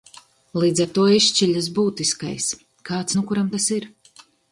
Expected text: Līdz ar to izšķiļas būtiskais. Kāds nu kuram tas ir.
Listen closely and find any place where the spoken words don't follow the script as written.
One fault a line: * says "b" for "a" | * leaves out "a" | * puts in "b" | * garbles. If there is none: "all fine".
all fine